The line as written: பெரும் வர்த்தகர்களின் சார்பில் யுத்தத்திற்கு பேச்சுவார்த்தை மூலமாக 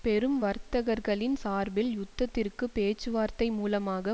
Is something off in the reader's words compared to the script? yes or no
no